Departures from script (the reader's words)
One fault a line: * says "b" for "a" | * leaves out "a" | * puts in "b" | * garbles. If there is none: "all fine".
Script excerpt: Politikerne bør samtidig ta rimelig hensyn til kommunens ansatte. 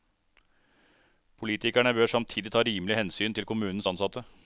all fine